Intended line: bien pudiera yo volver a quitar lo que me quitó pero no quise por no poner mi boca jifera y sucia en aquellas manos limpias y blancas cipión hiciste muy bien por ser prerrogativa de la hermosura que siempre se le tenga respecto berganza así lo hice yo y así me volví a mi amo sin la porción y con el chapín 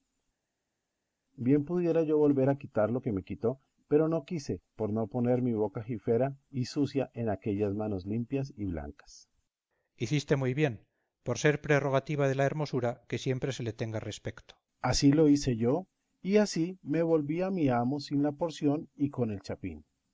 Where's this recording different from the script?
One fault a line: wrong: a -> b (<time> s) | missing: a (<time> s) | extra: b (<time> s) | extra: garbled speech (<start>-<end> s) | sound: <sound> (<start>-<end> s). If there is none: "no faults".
no faults